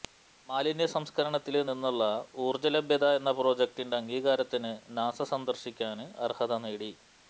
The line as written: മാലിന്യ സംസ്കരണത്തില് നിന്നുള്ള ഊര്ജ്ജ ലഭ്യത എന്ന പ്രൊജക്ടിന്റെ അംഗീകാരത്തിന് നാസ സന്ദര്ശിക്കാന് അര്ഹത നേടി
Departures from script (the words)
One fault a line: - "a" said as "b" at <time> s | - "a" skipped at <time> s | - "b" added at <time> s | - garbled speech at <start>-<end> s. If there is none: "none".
none